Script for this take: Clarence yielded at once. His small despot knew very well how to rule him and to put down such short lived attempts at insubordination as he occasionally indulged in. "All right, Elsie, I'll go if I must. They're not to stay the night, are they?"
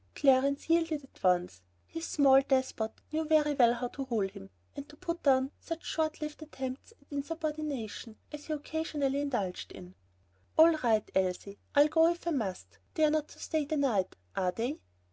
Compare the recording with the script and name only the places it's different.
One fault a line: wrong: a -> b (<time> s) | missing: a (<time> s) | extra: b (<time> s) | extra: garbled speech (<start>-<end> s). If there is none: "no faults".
no faults